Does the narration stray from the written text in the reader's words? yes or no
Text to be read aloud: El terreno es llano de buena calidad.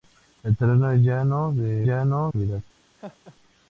yes